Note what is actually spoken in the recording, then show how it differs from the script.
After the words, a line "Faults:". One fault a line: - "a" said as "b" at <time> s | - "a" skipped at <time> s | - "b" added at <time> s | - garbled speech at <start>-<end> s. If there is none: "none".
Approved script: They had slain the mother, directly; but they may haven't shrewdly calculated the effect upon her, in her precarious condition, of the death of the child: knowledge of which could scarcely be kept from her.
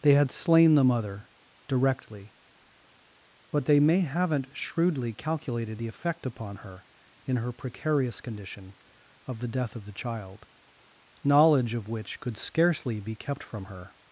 They had slain the mother, directly; but they may haven't shrewdly calculated the effect upon her, in her precarious condition, of the death of the child: knowledge of which could scarcely be kept from her.
Faults:
none